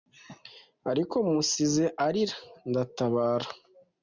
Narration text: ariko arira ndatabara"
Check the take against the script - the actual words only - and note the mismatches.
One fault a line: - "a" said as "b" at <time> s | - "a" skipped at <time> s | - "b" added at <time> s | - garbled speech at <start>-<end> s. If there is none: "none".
- "musize" added at 1.3 s